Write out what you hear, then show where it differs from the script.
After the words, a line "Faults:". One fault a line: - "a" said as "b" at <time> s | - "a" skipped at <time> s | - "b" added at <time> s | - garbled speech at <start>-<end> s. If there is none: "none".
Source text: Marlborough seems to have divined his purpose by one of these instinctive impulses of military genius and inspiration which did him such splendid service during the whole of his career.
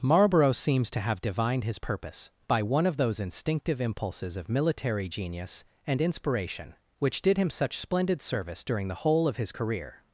Marlborough seems to have divined his purpose by one of those instinctive impulses of military genius and inspiration which did him such splendid service during the whole of his career.
Faults:
- "these" said as "those" at 2.9 s